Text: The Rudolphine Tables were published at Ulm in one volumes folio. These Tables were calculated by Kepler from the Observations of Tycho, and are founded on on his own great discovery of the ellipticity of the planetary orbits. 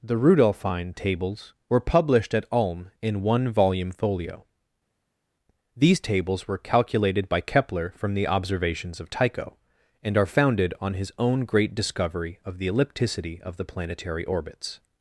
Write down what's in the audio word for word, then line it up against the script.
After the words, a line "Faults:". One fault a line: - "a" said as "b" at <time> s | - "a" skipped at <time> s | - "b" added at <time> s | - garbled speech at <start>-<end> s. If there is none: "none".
The Rudolphine Tables were published at Ulm in one volume folio. These Tables were calculated by Kepler from the Observations of Tycho, and are founded on his own great discovery of the ellipticity of the planetary orbits.
Faults:
- "volumes" said as "volume" at 3.5 s
- "on" skipped at 10.9 s